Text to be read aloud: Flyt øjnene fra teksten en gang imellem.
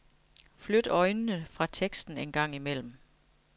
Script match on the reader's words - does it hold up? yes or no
yes